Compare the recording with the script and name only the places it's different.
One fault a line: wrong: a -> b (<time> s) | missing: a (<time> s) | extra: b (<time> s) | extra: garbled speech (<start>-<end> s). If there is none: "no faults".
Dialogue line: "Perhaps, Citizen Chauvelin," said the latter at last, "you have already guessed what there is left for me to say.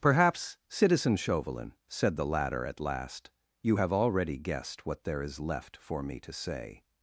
no faults